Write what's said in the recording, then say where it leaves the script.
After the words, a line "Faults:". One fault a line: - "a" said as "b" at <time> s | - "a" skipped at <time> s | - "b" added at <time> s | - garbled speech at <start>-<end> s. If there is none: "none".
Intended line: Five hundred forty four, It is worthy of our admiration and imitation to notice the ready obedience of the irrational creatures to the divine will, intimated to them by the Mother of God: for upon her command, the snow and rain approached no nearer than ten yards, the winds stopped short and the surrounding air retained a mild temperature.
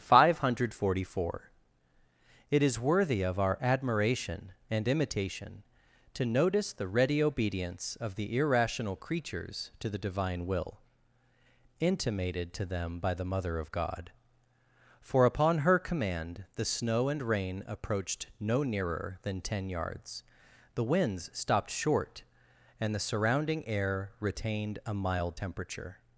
Five hundred forty four, It is worthy of our admiration and imitation to notice the ready obedience of the irrational creatures to the divine will, intimated to them by the Mother of God: for upon her command, the snow and rain approached no nearer than ten yards, the winds stopped short and the surrounding air retained a mild temperature.
Faults:
none